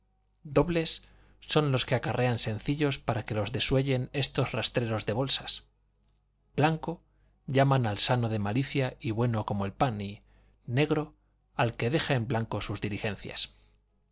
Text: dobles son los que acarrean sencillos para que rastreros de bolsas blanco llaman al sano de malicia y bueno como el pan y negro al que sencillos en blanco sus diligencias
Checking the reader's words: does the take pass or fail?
fail